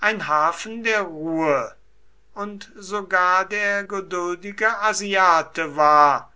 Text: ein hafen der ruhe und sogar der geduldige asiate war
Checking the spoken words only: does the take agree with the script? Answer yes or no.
yes